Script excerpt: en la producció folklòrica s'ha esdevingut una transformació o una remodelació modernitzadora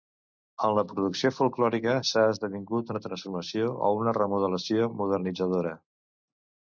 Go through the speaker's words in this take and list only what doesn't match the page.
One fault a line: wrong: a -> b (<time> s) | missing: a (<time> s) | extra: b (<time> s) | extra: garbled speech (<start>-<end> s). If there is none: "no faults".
no faults